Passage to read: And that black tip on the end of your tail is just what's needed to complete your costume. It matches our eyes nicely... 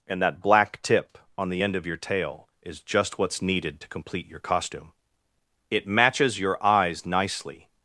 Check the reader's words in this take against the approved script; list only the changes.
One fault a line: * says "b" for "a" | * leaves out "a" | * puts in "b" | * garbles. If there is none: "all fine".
* says "your" for "our"